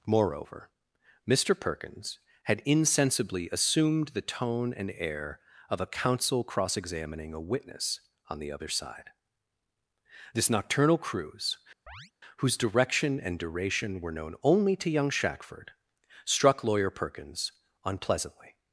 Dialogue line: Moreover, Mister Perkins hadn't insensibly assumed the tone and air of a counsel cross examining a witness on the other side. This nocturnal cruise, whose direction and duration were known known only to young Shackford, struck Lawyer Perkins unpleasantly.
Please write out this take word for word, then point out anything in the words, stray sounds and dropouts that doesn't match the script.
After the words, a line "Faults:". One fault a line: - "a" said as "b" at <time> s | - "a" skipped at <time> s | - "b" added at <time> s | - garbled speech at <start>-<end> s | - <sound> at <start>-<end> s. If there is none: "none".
Moreover, Mister Perkins had insensibly assumed the tone and air of a counsel cross examining a witness on the other side. This nocturnal cruise, whose direction and duration were known only to young Shackford, struck Lawyer Perkins unpleasantly.
Faults:
- "hadn't" said as "had" at 2.4 s
- chirp at 11.9-12.1 s
- "known" skipped at 14.4 s